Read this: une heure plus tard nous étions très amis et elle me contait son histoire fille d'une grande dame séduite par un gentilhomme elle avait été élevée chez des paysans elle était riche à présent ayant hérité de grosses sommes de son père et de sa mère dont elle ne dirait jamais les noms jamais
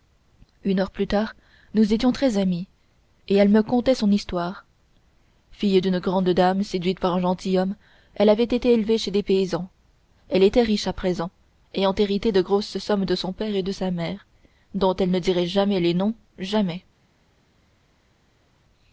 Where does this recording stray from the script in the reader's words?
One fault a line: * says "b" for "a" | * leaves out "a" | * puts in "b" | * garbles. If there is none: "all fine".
all fine